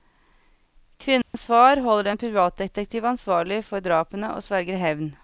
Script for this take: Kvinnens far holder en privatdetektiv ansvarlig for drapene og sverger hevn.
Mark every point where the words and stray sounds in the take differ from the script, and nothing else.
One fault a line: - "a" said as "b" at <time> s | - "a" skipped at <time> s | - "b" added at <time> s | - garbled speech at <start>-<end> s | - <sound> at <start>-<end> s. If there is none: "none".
- dropout at 1.2-1.3 s